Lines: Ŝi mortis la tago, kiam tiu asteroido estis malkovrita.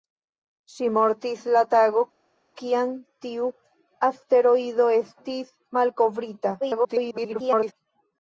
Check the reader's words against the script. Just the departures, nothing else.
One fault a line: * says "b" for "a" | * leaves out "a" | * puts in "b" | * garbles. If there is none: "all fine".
* garbles